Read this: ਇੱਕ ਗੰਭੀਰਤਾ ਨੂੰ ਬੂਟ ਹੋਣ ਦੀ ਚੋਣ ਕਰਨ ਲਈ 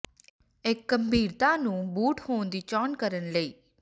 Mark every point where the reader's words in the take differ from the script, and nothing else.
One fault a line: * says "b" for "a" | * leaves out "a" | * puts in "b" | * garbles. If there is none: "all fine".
all fine